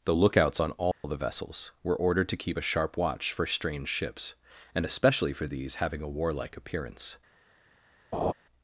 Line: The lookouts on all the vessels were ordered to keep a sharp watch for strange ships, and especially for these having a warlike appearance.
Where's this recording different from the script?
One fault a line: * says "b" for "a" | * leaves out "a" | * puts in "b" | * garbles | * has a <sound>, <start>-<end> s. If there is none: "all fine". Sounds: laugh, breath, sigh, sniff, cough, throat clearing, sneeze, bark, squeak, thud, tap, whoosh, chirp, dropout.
* has a dropout, 0.9-1.0 s
* has a laugh, 8.1-8.3 s